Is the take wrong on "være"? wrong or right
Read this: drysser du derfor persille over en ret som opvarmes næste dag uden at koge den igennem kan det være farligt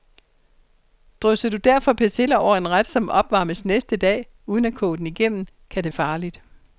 wrong